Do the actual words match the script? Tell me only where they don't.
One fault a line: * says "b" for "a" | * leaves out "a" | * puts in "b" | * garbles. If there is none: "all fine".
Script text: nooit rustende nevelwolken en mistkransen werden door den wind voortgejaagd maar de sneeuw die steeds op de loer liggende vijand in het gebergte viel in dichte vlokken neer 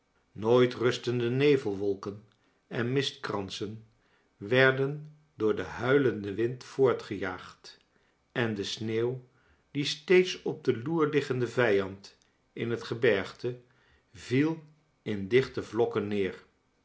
* puts in "huilenden"
* says "en" for "maar"